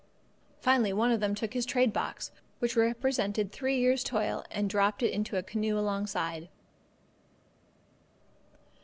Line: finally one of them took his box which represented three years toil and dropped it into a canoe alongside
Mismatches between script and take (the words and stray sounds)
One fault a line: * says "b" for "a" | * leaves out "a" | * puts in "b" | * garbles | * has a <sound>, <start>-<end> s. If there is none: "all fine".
* puts in "trade"